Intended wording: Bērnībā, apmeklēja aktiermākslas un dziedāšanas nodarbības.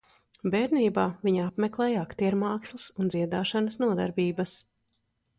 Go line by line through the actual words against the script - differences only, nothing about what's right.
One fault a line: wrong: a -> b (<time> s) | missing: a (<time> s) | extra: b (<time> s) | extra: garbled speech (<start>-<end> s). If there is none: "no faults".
extra: viņa (1.3 s)